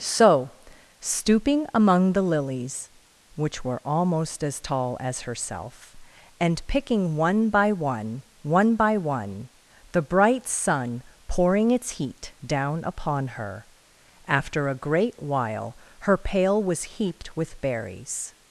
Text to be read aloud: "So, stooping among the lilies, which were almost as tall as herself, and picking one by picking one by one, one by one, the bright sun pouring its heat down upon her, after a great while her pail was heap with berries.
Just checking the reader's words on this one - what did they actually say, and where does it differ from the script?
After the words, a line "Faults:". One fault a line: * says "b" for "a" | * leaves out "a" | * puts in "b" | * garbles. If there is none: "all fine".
"So, stooping among the lilies, which were almost as tall as herself, and picking one by one, one by one, the bright sun pouring its heat down upon her, after a great while her pail was heaped with berries.
Faults:
* leaves out "picking"
* leaves out "by"
* leaves out "one"
* says "heaped" for "heap"